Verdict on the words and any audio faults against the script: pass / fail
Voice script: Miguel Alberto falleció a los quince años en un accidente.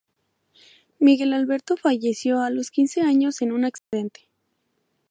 fail